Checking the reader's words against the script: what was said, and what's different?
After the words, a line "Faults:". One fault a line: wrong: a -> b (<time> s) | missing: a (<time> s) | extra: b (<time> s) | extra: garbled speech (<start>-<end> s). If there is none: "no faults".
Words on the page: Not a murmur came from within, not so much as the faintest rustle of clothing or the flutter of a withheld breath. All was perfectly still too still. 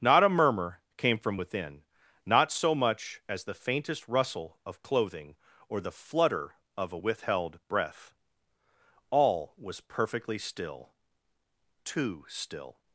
Not a murmur came from within, not so much as the faintest rustle of clothing or the flutter of a withheld breath. All was perfectly still too still.
Faults:
no faults